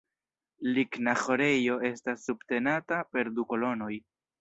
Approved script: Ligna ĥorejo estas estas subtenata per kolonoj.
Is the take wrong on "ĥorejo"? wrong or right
right